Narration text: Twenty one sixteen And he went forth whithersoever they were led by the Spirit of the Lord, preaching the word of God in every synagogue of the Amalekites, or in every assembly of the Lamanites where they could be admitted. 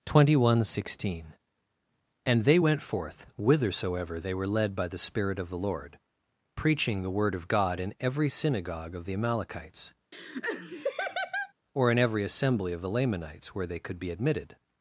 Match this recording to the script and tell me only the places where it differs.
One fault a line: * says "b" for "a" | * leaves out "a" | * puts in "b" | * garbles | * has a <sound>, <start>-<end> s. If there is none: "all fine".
* says "they" for "he"
* has a laugh, 10.1-11.5 s